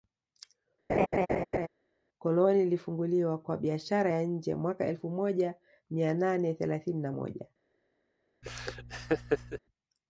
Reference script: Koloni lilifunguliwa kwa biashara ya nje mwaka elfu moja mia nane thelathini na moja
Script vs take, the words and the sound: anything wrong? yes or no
yes